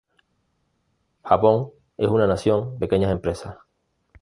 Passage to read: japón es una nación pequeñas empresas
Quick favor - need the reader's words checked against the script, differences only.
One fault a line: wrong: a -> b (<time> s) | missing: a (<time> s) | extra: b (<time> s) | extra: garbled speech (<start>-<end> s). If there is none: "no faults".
no faults